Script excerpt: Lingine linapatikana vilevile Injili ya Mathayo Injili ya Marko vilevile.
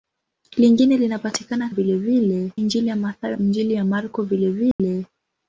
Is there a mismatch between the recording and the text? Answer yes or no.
no